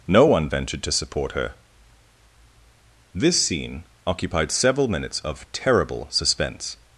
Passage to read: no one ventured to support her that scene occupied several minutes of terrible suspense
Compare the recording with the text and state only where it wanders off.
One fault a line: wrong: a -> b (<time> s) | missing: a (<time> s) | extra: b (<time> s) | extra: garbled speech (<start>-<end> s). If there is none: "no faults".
wrong: that -> this (3.1 s)